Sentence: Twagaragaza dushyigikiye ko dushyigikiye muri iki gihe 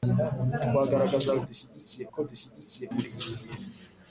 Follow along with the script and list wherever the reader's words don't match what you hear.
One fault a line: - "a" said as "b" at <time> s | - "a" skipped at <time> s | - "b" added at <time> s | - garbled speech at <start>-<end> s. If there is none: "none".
none